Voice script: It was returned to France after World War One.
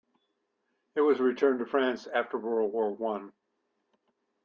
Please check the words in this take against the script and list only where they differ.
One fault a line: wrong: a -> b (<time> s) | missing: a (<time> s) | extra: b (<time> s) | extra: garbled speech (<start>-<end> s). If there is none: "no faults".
no faults